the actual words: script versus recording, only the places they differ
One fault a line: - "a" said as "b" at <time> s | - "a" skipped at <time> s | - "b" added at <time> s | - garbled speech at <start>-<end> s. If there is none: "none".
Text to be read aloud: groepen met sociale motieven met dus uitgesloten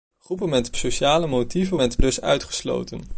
none